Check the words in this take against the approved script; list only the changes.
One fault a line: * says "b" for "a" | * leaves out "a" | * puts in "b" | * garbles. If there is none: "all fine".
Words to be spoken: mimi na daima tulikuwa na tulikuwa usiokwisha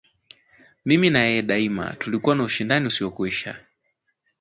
* puts in "yeye"
* says "ushindani" for "tulikuwa"